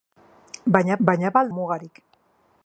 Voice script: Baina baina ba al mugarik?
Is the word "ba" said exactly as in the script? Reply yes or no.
yes